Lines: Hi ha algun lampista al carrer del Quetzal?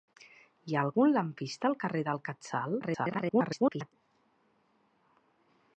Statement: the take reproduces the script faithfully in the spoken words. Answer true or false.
false